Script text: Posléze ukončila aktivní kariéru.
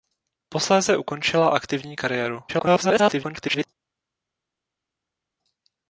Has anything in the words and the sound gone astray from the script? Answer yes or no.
yes